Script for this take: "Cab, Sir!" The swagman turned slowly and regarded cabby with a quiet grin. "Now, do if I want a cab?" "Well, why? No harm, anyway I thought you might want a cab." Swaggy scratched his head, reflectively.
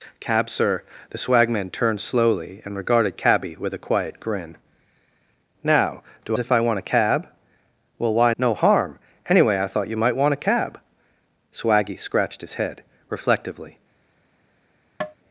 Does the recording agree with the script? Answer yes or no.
yes